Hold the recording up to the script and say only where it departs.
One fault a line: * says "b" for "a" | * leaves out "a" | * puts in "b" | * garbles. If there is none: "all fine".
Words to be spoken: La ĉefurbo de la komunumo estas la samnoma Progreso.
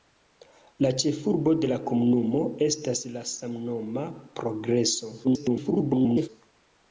* garbles